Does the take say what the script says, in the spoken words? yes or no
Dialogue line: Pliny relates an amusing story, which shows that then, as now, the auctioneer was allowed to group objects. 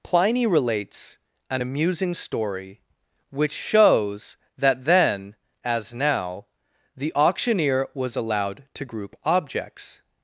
yes